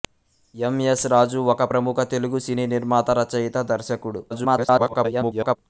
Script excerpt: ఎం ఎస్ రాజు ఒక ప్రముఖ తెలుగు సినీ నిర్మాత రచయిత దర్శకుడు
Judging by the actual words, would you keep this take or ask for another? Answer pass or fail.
fail